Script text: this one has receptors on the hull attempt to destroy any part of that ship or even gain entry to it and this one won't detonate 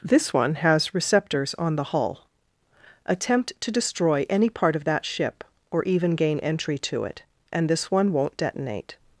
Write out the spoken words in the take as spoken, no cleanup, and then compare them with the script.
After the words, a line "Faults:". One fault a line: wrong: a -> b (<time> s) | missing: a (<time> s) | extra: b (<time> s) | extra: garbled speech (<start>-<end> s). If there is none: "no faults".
this one has receptors on the hull attempt to destroy any part of that ship or even gain entry to it and this one won't detonate
Faults:
no faults